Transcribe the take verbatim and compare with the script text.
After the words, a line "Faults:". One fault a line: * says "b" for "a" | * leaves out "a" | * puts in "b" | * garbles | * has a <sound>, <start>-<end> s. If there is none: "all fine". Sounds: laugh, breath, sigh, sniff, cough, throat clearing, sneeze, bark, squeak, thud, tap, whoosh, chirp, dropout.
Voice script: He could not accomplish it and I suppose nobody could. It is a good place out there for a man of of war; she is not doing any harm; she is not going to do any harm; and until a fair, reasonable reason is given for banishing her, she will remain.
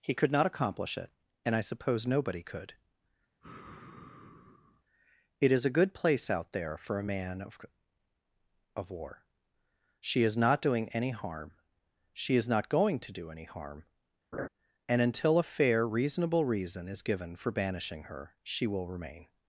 He could not accomplish it and I suppose nobody could. It is a good place out there for a man of of war; she is not doing any harm; she is not going to do any harm; and until a fair, reasonable reason is given for banishing her, she will remain.
Faults:
* has a sigh, 3.4-4.8 s
* has a laugh, 14.3-14.5 s